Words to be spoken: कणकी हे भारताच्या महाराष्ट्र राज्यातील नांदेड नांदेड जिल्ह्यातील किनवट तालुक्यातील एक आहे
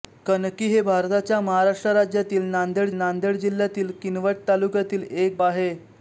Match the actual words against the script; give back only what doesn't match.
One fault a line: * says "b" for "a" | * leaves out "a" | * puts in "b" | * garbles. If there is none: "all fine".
all fine